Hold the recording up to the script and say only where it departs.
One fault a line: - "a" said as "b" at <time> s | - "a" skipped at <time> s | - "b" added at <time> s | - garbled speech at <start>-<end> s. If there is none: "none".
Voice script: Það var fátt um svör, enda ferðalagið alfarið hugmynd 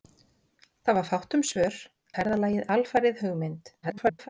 - "enda" skipped at 1.8 s
- garbled speech at 3.8-4.3 s